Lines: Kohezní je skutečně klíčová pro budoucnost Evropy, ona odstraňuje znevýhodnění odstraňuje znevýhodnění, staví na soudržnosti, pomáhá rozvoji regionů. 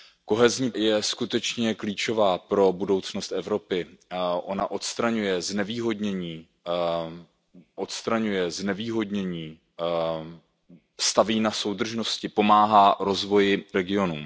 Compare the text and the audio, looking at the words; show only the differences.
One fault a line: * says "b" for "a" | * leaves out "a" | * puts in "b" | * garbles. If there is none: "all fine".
all fine